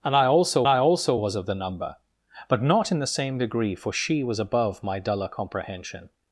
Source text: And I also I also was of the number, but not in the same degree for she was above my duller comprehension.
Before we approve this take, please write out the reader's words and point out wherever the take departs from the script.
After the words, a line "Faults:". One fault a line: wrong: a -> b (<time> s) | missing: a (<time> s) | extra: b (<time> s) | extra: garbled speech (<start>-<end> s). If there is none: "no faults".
And I also I also was of the number, but not in the same degree for she was above my duller comprehension.
Faults:
no faults